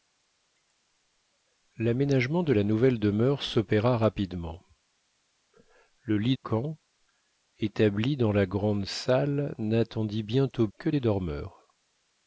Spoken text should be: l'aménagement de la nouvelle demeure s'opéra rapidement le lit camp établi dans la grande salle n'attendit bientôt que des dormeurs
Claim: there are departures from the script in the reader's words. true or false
false